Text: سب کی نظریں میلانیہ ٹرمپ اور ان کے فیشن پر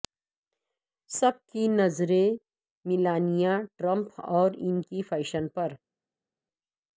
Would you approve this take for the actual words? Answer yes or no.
yes